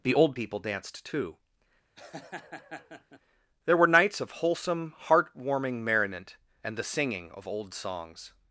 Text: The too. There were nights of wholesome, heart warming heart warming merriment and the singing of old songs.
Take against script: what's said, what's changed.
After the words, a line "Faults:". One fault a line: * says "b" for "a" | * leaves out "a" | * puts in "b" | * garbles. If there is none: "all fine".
The old people danced too. There were nights of wholesome, heart warming merriment and the singing of old songs.
Faults:
* puts in "old people danced"
* leaves out "heart warming"